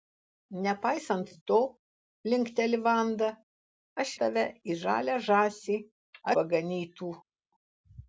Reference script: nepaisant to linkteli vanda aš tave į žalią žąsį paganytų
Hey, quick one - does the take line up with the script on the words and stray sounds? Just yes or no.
yes